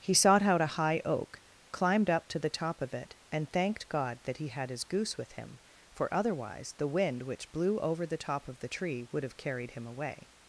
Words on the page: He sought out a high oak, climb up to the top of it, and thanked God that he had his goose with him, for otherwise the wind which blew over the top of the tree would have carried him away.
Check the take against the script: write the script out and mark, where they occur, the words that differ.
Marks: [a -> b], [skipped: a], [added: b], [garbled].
He sought out a high oak, [climb -> climbed] up to the top of it, and thanked God that he had his goose with him, for otherwise the wind which blew over the top of the tree would have carried him away.